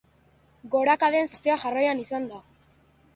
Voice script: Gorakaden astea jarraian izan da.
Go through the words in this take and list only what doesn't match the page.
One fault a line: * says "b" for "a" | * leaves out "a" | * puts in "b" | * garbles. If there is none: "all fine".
all fine